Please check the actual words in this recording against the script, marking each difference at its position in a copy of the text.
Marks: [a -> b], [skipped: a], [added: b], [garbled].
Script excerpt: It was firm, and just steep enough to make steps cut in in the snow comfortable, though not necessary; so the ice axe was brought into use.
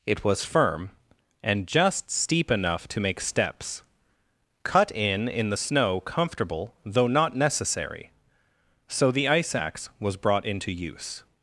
It was firm, and just steep enough to make steps cut in in the snow comfortable, though not necessary; so the ice axe was brought into use.